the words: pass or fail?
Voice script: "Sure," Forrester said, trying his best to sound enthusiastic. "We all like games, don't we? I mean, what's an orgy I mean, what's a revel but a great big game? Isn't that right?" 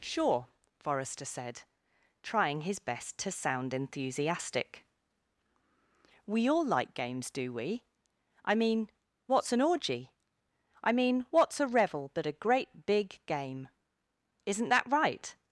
fail